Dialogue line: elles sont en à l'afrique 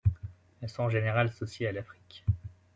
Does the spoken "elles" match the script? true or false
true